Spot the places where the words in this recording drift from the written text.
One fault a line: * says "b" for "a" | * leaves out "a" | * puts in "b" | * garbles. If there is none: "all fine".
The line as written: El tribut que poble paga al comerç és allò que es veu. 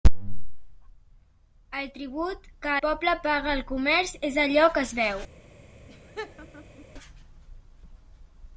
all fine